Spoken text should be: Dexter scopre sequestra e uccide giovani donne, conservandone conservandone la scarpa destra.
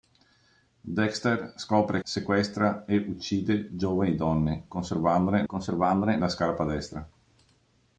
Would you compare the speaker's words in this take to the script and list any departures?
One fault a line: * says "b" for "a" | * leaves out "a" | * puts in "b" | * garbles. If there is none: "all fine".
all fine